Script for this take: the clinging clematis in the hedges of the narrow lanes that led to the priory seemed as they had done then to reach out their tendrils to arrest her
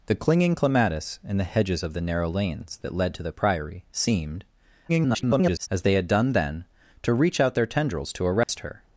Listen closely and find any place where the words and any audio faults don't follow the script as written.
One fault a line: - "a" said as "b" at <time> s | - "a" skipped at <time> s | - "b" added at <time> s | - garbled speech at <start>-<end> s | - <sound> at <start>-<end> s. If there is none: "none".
- garbled speech at 4.9-5.7 s
- dropout at 8.4-8.5 s